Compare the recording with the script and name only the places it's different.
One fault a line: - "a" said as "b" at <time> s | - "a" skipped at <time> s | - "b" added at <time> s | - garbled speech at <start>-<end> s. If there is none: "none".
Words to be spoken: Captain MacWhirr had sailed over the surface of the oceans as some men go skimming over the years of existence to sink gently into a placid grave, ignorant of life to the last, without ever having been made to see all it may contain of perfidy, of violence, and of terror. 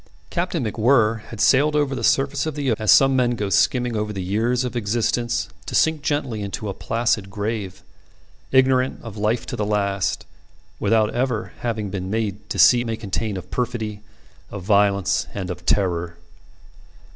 - "oceans" skipped at 2.7 s
- "all" skipped at 12.8 s